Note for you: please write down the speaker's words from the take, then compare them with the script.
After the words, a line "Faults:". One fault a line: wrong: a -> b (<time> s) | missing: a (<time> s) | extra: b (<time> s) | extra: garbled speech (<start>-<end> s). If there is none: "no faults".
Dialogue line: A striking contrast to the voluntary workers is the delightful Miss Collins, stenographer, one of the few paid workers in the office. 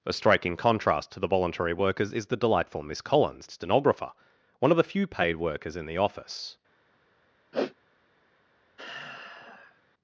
A striking contrast to the voluntary workers is the delightful Miss Collins, stenographer, one of the few paid workers in the office.
Faults:
no faults